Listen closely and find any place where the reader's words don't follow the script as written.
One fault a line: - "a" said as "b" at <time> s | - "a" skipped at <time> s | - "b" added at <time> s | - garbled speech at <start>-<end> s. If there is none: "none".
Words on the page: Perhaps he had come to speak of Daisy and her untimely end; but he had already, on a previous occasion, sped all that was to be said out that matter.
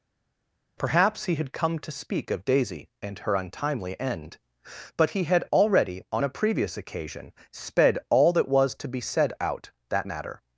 none